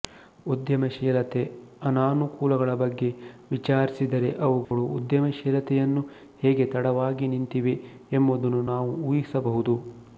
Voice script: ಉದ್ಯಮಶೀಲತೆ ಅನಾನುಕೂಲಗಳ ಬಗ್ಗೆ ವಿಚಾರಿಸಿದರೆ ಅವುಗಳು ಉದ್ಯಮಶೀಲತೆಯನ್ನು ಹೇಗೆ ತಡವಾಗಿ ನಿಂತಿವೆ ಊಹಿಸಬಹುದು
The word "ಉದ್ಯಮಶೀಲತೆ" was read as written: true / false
true